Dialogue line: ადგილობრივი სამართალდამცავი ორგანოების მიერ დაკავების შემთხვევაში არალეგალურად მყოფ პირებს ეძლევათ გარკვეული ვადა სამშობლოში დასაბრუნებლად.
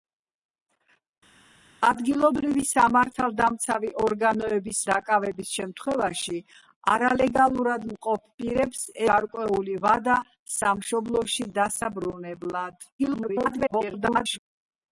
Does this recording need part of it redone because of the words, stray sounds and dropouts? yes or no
yes